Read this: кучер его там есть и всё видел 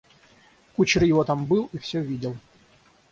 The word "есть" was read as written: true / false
false